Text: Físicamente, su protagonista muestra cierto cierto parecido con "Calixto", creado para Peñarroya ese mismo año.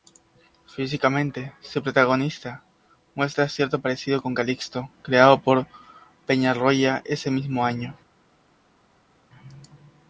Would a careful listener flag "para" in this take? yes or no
yes